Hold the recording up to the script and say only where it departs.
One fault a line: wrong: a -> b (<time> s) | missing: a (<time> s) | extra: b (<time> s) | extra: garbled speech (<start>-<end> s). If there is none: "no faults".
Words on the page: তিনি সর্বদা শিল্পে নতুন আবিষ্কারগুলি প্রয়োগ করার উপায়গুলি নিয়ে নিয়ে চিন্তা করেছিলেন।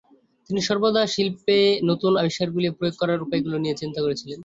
missing: নিয়ে (3.8 s)